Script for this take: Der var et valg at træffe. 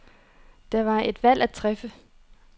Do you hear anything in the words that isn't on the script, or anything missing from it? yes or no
no